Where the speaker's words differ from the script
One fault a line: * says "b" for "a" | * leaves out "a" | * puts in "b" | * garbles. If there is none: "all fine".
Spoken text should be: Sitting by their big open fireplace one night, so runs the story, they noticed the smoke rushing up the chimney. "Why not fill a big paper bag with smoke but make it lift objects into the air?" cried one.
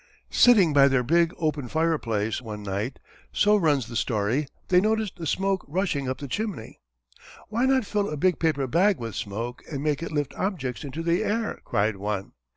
* says "and" for "but"